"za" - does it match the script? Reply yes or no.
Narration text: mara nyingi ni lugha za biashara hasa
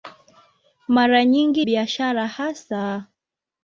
no